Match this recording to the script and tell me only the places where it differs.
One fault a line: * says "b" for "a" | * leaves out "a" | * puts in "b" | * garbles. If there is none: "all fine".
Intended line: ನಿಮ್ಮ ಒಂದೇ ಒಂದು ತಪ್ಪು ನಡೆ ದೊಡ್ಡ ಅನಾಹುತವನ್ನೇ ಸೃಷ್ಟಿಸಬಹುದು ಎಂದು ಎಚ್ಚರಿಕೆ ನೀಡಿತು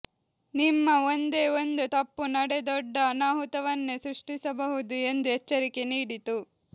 all fine